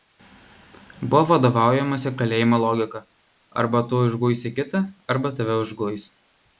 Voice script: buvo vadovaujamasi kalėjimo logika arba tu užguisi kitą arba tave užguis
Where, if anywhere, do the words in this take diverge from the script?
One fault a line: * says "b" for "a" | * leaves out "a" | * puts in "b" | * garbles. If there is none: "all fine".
all fine